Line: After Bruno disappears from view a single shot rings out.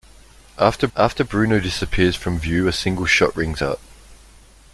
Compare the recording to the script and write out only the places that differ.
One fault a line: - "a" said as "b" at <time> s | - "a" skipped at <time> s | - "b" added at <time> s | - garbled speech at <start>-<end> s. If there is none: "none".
- "after" added at 0.9 s